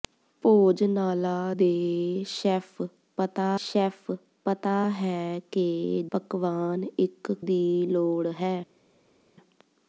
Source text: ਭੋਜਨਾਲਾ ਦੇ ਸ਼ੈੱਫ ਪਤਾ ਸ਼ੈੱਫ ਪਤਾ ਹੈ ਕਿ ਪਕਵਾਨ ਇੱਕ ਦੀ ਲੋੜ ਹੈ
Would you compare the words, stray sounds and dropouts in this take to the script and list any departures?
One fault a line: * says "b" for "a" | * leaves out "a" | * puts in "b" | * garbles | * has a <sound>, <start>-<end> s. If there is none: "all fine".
all fine